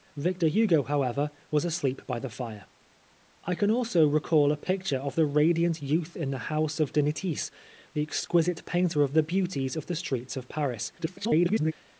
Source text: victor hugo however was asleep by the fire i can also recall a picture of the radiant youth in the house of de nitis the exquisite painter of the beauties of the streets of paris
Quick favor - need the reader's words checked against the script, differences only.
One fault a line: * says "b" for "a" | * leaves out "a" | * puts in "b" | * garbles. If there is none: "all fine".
* garbles